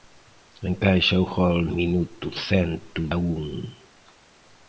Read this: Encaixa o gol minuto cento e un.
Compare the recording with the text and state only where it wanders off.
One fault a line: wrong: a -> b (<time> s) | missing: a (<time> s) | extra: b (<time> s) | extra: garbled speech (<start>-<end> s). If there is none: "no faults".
no faults